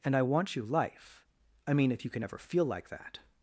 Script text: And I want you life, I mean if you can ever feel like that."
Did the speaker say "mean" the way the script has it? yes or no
yes